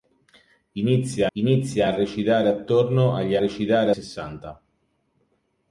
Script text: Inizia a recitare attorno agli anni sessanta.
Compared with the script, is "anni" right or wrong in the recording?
wrong